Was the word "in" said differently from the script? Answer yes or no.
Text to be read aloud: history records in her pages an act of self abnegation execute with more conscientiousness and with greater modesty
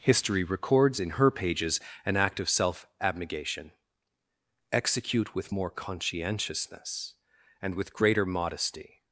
no